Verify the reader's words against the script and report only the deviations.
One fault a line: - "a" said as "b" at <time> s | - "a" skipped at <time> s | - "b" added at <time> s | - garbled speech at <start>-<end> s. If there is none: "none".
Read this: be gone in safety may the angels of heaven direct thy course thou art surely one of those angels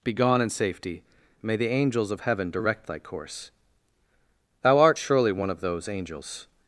none